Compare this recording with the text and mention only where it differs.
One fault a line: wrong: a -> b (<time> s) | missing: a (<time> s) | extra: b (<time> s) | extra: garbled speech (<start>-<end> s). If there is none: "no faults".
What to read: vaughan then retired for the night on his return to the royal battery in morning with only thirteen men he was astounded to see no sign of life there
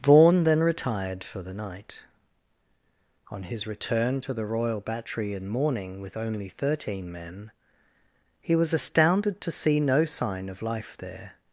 no faults